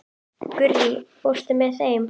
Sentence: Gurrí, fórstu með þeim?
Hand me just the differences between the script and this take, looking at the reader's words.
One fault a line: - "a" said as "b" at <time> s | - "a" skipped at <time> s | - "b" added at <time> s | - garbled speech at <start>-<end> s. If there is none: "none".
none